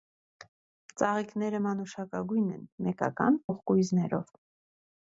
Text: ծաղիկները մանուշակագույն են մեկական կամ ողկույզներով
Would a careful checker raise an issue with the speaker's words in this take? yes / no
yes